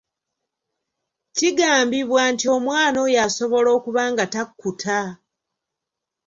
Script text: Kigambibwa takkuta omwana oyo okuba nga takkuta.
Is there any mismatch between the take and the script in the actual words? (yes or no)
yes